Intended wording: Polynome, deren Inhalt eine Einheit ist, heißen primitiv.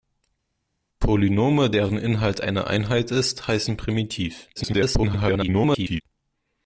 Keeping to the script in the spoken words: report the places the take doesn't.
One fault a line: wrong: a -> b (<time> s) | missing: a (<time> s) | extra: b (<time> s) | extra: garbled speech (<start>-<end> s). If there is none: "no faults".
extra: garbled speech (4.6-6.0 s)